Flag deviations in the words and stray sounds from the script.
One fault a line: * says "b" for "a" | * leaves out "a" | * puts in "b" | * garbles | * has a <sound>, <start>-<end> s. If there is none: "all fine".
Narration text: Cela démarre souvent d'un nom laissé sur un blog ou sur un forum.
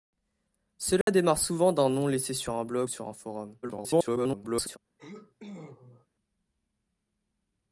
* has a dropout, 1.0-1.1 s
* leaves out "ou"
* garbles
* has a sneeze, 5.0-6.1 s